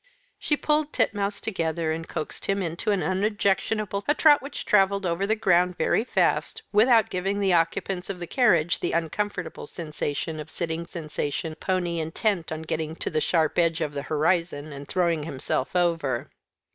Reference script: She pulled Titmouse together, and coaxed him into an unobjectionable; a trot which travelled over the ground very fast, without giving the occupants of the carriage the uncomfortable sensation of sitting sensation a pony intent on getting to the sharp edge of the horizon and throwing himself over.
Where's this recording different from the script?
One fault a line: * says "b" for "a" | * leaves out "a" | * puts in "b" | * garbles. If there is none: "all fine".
all fine